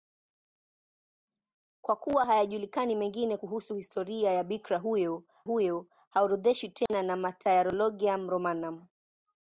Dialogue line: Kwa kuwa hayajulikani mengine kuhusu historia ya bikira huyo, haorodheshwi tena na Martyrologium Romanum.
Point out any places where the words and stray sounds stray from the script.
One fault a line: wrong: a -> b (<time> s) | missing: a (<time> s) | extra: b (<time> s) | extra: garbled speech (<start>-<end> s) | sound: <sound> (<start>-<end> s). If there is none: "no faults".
extra: huyo (5.4 s)
sound: dropout (6.9-6.9 s)